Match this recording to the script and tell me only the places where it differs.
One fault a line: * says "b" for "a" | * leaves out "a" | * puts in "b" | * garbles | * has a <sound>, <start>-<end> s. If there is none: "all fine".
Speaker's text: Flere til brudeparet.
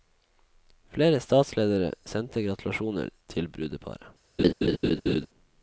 * puts in "statsledere sendte gratulasjoner"
* has a laugh, 4.4-5.3 s